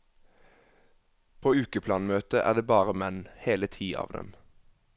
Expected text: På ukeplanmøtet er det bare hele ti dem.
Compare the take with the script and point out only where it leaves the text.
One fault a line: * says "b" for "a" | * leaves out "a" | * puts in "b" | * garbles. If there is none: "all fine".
* puts in "menn"
* puts in "av"